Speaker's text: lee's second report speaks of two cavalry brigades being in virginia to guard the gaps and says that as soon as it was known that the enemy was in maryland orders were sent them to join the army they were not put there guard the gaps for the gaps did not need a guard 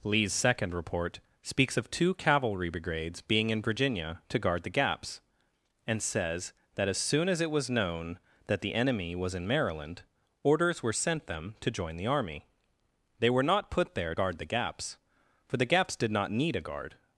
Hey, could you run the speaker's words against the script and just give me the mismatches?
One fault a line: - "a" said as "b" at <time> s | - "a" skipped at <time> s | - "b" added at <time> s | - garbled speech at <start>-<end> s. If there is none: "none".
none